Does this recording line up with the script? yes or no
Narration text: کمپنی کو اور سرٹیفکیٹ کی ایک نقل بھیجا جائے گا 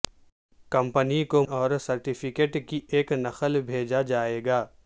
yes